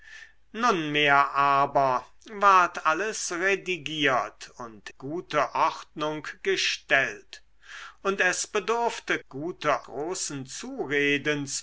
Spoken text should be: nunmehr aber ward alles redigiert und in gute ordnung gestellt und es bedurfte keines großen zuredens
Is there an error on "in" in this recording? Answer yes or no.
yes